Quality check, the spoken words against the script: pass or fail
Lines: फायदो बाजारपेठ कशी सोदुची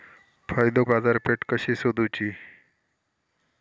pass